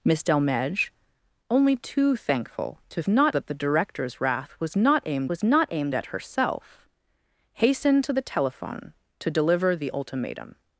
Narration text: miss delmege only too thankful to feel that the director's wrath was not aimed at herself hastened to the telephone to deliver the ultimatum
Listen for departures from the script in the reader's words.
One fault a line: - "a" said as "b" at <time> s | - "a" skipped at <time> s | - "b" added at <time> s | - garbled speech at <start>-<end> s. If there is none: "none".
- "feel" said as "not" at 3.1 s
- "was not aimed" added at 5.3 s